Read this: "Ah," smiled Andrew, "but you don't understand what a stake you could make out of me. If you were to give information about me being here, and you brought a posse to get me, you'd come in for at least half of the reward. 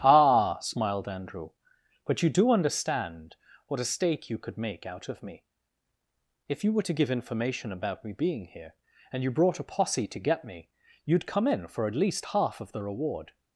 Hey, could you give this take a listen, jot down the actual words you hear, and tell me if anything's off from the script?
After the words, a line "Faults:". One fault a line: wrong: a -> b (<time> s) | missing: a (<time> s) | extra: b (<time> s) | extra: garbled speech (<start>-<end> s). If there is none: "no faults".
"Ah," smiled Andrew, "but you do understand what a stake you could make out of me. If you were to give information about me being here, and you brought a posse to get me, you'd come in for at least half of the reward.
Faults:
wrong: don't -> do (2.3 s)